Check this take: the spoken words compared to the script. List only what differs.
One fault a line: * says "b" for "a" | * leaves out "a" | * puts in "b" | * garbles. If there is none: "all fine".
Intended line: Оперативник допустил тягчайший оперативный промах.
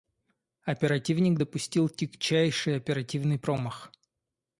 all fine